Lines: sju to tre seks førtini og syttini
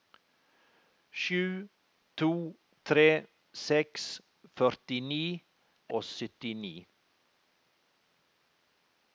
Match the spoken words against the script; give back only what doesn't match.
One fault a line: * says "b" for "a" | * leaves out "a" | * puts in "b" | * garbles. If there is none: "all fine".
all fine